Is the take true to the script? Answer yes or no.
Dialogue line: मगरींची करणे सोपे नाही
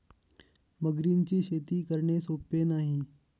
no